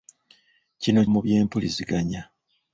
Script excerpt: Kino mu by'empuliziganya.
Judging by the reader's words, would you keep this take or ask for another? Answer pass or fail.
pass